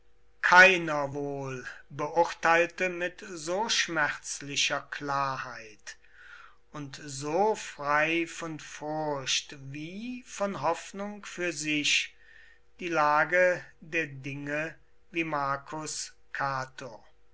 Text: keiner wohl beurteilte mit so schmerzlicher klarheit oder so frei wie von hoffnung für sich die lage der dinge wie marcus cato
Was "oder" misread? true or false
true